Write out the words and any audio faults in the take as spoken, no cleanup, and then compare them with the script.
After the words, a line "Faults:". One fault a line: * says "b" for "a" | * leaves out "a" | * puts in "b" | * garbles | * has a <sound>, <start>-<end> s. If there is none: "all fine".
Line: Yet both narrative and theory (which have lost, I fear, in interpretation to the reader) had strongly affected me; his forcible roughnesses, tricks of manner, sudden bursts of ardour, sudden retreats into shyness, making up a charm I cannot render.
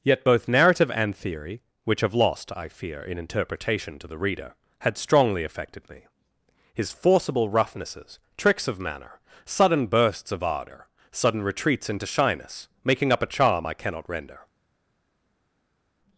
Yet both narrative and theory (which have lost, I fear, in interpretation to the reader) had strongly affected me; his forcible roughnesses, tricks of manner, sudden bursts of ardour, sudden retreats into shyness, making up a charm I cannot render.
Faults:
all fine